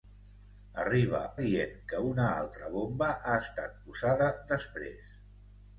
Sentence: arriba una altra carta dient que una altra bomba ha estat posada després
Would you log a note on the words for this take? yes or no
yes